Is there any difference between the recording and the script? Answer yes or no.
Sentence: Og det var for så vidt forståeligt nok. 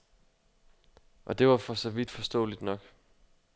no